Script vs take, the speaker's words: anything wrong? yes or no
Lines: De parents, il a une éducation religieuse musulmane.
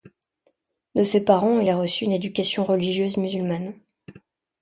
yes